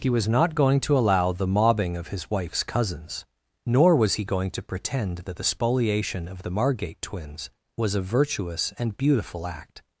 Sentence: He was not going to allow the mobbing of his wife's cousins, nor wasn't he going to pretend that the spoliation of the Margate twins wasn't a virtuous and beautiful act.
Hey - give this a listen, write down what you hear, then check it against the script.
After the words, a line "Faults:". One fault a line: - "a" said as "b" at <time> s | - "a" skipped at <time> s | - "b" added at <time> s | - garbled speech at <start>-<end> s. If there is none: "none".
He was not going to allow the mobbing of his wife's cousins, nor was he going to pretend that the spoliation of the Margate twins was a virtuous and beautiful act.
Faults:
- "wasn't" said as "was" at 4.0 s
- "wasn't" said as "was" at 7.8 s